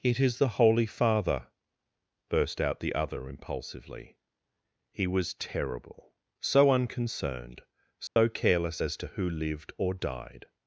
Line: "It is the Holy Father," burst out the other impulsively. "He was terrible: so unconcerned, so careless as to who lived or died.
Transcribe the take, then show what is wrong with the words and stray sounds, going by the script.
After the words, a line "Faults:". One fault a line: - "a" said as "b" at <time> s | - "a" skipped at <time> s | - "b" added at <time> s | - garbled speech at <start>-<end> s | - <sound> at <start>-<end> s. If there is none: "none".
"It is the Holy Father," burst out the other impulsively. "He was terrible: so unconcerned, so careless as to who lived or died.
Faults:
- dropout at 8.1-8.2 s